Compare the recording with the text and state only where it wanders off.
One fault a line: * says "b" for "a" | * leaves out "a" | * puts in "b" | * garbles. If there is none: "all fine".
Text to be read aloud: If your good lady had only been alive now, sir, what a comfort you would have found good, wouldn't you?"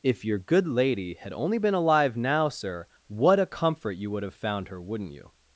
* says "her" for "good"